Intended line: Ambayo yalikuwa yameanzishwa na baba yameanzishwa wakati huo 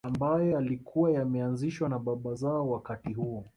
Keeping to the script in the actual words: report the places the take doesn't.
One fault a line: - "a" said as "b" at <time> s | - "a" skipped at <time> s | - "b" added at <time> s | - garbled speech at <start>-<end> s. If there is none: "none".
- "yameanzishwa" said as "zao" at 2.3 s